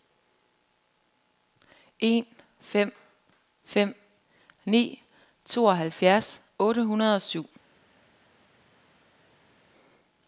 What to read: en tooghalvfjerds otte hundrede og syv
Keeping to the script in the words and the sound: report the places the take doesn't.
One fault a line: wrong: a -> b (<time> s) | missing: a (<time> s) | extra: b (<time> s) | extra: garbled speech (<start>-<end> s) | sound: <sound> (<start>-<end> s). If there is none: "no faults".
extra: fem fem ni (2.6 s)